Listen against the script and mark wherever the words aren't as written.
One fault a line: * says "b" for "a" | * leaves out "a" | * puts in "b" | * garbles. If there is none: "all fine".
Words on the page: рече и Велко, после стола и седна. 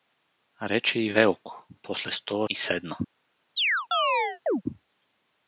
all fine